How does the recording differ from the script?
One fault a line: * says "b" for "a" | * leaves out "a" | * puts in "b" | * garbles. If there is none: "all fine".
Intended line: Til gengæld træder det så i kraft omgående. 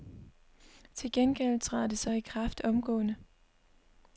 all fine